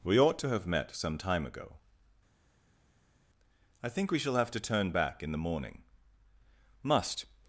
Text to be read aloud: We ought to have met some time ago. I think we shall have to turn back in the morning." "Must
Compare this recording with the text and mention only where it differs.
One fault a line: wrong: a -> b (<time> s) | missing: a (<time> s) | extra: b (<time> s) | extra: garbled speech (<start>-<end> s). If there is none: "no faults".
no faults